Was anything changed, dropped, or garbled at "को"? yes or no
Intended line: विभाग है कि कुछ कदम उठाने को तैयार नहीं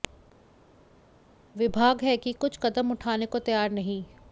no